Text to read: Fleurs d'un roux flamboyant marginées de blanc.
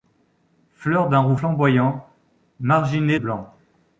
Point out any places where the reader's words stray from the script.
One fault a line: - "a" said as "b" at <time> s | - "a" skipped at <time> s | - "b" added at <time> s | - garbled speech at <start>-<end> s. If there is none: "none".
- "de" skipped at 3.2 s